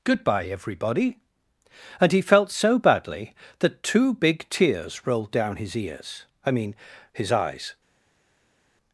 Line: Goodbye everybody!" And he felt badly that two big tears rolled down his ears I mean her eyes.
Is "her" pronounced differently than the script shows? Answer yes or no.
yes